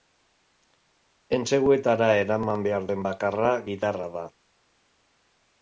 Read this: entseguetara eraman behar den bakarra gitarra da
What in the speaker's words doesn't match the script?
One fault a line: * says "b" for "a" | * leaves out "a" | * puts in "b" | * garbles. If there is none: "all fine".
all fine